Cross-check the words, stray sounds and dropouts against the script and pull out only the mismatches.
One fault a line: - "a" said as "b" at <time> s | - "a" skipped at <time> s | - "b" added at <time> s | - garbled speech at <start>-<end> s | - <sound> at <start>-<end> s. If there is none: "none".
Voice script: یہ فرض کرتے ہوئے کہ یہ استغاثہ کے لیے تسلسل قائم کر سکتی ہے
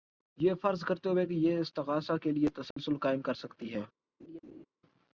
- dropout at 2.7-2.8 s
- laugh at 4.2-4.7 s